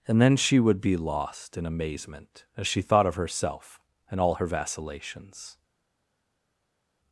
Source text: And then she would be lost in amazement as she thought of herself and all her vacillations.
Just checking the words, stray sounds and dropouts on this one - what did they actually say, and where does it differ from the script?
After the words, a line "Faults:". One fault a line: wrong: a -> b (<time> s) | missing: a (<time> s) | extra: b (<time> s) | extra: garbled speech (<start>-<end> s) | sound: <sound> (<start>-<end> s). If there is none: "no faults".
And then she would be lost in amazement as she thought of herself and all her vacillations.
Faults:
no faults